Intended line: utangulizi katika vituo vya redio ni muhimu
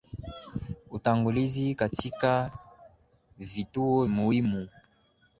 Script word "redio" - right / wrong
wrong